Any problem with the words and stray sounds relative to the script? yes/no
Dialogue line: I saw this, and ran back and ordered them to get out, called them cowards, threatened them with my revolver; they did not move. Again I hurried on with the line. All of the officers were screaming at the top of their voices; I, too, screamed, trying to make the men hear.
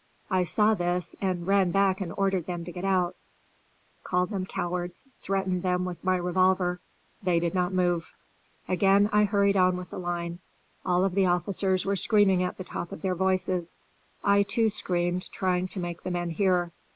no